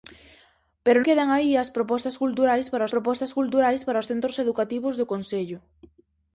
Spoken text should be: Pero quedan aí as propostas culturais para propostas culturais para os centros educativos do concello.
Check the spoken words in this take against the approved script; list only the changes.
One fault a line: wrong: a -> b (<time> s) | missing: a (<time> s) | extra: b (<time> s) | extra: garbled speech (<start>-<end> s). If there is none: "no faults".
no faults